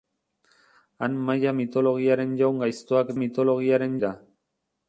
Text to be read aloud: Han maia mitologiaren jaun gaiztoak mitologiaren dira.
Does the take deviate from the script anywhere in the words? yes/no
no